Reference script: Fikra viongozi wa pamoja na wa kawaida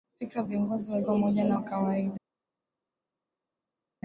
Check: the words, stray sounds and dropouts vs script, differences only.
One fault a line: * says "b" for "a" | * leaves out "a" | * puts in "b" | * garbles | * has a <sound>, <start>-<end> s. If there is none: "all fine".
all fine